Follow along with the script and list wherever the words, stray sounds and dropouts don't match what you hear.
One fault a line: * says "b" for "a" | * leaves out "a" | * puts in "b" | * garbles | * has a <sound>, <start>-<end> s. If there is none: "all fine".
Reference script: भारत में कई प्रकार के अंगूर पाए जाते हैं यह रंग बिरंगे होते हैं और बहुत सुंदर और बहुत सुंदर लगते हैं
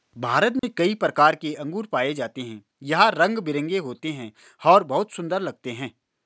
* has a dropout, 0.6-0.6 s
* leaves out "और बहुत सुंदर"